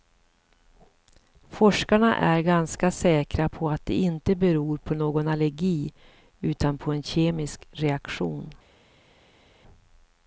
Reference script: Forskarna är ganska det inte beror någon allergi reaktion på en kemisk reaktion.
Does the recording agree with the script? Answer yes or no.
no